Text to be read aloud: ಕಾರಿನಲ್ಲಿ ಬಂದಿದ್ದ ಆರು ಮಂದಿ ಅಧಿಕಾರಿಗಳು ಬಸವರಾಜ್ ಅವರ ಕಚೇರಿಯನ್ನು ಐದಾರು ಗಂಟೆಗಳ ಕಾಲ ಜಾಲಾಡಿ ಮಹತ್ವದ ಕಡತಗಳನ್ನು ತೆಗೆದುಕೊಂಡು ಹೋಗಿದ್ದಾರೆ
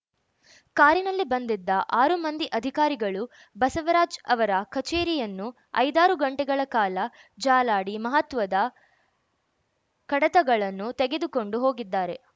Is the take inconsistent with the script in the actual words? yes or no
no